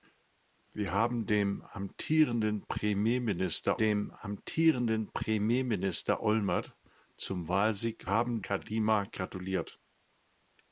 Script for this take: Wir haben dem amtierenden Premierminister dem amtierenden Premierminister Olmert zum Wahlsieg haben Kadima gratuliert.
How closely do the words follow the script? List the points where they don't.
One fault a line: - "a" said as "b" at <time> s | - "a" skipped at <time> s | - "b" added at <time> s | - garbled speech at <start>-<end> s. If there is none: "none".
none